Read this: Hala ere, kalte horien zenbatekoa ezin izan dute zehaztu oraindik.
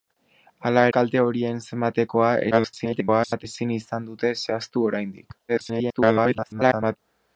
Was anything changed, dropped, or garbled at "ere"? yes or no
yes